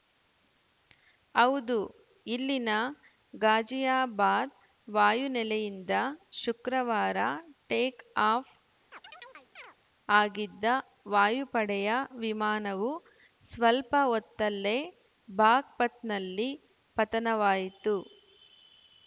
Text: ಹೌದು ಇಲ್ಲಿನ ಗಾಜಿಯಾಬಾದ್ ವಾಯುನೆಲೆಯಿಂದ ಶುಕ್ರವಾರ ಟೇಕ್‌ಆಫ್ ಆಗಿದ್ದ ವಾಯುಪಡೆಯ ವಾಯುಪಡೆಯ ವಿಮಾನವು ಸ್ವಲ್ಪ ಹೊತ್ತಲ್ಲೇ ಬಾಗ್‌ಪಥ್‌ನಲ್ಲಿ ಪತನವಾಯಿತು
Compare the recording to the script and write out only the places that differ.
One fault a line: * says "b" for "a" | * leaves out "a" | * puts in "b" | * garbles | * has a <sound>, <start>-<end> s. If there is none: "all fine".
* has a chirp, 8.9-9.7 s
* leaves out "ವಾಯುಪಡೆಯ"